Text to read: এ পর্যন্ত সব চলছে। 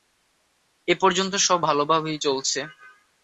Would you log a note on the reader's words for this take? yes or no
yes